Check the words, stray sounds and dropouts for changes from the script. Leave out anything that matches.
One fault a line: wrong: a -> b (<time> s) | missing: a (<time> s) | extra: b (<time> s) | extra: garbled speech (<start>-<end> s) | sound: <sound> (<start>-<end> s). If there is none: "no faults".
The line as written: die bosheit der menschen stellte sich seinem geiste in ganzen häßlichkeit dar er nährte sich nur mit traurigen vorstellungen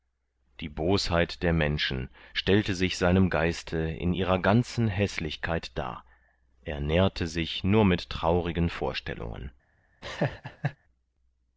extra: ihrer (4.1 s)
sound: laugh (10.0-10.8 s)